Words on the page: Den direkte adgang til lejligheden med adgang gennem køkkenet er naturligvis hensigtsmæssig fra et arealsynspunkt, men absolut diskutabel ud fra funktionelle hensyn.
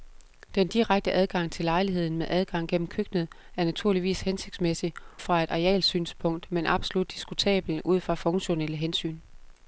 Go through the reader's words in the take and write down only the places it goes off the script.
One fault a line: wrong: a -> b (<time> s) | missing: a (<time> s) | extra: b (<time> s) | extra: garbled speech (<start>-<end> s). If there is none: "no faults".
no faults